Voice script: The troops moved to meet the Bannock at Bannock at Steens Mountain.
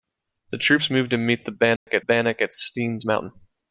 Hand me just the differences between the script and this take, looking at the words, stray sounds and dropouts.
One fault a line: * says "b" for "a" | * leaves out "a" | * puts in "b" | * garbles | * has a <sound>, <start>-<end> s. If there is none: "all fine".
* has a dropout, 1.8-1.9 s